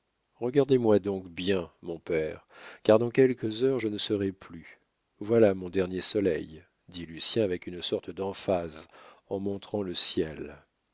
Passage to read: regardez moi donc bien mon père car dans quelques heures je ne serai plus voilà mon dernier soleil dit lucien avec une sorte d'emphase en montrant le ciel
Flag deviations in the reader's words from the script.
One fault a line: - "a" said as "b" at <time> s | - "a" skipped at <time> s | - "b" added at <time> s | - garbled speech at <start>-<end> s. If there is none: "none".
none